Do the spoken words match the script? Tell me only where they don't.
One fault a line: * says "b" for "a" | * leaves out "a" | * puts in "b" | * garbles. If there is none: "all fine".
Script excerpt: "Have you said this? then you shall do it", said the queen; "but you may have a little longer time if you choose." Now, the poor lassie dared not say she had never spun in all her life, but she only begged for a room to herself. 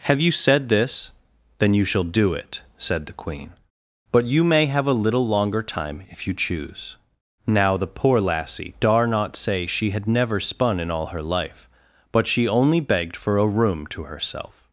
* says "dar" for "dared"